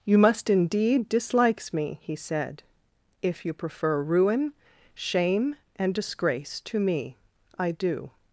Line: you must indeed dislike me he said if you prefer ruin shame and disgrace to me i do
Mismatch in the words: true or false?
true